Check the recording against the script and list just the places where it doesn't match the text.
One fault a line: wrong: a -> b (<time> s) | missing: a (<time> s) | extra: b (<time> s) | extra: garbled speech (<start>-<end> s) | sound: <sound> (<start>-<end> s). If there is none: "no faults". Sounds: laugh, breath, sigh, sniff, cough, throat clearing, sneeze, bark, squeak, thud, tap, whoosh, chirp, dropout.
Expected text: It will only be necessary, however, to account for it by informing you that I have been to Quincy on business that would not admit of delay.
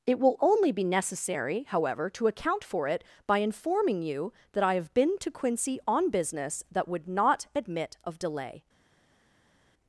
no faults